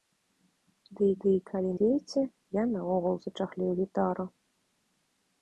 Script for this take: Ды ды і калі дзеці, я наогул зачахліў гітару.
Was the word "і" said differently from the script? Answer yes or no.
no